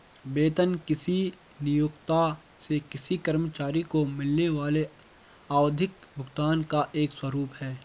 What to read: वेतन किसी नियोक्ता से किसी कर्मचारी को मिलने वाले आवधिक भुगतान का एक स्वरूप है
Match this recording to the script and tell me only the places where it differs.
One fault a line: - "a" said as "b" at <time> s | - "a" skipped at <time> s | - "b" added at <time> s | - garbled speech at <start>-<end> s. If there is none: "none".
none